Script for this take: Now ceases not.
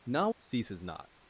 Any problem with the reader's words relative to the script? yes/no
no